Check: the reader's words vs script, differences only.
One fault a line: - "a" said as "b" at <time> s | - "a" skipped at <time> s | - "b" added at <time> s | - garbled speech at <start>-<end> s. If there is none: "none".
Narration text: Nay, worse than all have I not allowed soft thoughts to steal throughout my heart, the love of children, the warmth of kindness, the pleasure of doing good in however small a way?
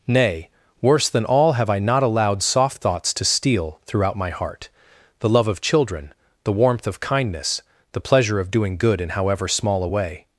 none